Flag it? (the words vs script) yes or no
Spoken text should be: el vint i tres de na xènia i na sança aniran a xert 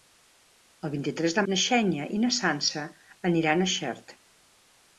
no